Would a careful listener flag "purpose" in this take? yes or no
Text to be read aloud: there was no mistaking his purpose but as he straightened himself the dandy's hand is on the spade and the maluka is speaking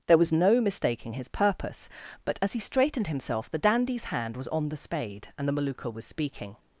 no